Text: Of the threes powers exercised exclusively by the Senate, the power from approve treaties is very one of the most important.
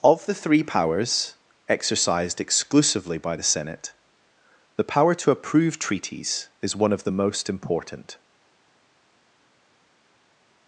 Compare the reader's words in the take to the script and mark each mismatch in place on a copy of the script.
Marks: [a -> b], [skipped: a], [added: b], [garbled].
Of the [threes -> three] powers exercised exclusively by the Senate, the power [from -> to] approve treaties is [skipped: very] one of the most important.